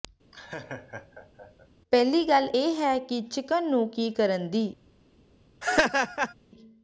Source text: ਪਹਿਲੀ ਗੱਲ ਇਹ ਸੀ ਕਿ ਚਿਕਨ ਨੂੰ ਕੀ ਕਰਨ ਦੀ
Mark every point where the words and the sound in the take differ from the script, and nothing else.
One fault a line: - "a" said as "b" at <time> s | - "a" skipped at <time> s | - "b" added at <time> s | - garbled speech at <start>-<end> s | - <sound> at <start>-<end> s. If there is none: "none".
- laugh at 0.3-1.7 s
- "ਸੀ" said as "ਹੈ" at 2.7 s
- laugh at 5.6-6.3 s